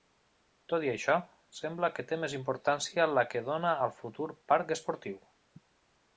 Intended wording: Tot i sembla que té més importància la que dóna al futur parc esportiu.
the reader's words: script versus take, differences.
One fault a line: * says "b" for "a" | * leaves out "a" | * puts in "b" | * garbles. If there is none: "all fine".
* puts in "això"